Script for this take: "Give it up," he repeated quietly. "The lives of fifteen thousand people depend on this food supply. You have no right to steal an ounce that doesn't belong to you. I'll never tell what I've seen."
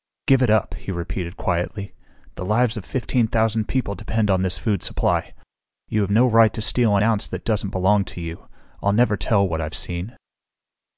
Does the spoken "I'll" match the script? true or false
true